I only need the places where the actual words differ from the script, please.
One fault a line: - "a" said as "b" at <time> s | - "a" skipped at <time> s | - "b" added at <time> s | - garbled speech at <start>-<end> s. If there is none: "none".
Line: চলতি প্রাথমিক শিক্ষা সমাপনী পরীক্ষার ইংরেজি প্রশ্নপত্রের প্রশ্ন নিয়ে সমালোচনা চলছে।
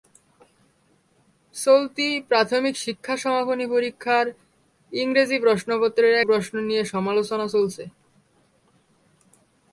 none